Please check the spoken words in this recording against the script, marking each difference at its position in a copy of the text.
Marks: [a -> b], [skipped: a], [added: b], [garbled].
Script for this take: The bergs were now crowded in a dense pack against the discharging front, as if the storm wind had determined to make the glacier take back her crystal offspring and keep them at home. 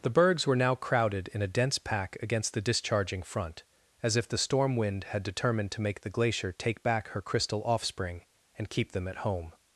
The bergs were now crowded in a dense pack against the discharging front, as if the storm wind had determined to make the glacier take back her crystal offspring and keep them at home.